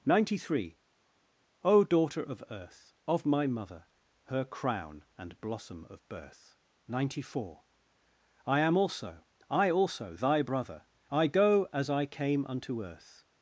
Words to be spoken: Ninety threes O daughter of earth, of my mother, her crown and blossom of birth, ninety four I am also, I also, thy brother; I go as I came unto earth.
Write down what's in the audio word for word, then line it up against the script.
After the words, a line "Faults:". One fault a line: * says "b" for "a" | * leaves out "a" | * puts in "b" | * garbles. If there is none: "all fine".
Ninety three O daughter of earth, of my mother, her crown and blossom of birth, ninety four I am also, I also, thy brother; I go as I came unto earth.
Faults:
* says "three" for "threes"